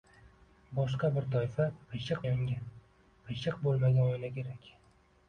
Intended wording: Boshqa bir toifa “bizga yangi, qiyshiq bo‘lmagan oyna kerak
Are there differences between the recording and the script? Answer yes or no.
yes